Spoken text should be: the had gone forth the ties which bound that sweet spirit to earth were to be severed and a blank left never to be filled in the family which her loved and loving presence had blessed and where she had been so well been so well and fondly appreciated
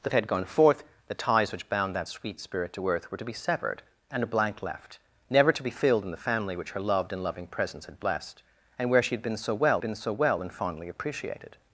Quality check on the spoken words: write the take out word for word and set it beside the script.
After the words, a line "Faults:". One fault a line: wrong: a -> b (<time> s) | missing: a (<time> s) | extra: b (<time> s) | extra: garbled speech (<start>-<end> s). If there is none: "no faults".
the had gone forth the ties which bound that sweet spirit to earth were to be severed and a blank left never to be filled in the family which her loved and loving presence had blessed and where she had been so well been so well and fondly appreciated
Faults:
no faults